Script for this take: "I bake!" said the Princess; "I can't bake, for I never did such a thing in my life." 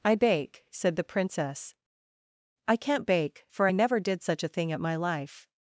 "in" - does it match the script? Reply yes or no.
no